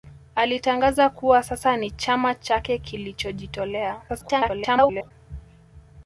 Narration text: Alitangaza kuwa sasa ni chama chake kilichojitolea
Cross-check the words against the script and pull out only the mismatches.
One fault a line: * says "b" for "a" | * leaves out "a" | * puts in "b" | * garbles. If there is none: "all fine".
* garbles